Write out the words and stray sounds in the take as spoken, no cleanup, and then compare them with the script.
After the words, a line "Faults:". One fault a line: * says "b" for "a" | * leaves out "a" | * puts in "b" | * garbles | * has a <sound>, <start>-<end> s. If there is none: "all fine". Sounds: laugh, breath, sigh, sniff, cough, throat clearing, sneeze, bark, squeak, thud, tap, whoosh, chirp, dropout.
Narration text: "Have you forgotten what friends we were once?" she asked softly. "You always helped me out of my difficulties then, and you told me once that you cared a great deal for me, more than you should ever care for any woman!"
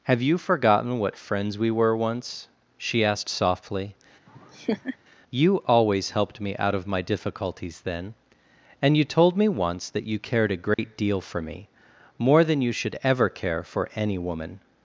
"Have you forgotten what friends we were once?" she asked softly. "You always helped me out of my difficulties then, and you told me once that you cared a great deal for me, more than you should ever care for any woman!"
Faults:
* has a laugh, 4.3-5.0 s
* has a dropout, 10.7-10.8 s